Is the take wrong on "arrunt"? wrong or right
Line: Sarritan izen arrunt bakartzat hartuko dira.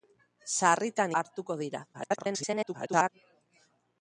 wrong